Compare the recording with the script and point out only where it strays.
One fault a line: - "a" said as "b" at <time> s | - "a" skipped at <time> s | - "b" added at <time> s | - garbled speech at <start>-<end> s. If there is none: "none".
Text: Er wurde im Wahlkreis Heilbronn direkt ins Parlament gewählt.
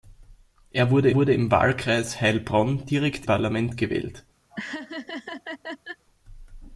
- "wurde" added at 1.1 s
- "ins" skipped at 3.3 s